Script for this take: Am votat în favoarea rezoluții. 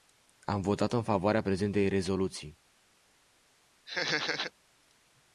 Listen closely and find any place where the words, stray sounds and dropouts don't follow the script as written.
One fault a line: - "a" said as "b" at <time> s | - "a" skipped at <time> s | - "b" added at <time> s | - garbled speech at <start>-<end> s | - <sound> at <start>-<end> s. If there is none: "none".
- "prezentei" added at 1.4 s
- laugh at 3.9-4.5 s